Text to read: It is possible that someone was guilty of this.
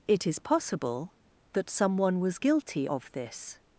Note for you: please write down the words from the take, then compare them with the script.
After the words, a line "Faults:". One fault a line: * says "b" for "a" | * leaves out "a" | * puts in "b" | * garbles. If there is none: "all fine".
It is possible that someone was guilty of this.
Faults:
all fine